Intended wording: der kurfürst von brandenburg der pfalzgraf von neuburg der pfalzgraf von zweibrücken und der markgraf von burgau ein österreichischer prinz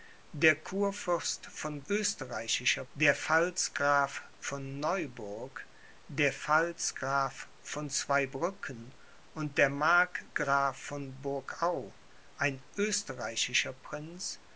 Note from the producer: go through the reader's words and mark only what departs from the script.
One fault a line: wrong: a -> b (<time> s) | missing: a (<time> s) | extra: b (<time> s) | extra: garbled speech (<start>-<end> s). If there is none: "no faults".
wrong: brandenburg -> österreichischer (1.9 s)